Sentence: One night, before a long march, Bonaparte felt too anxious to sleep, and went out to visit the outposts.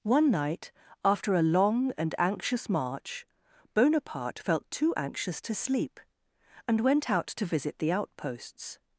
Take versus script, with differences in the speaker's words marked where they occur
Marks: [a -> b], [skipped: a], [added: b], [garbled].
One night, [before -> after] a long [added: and anxious] march, Bonaparte felt too anxious to sleep, and went out to visit the outposts.